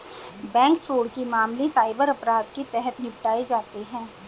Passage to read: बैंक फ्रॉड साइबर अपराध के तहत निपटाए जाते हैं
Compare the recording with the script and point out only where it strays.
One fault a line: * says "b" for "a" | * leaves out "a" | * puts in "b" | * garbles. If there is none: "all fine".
* puts in "के मामले"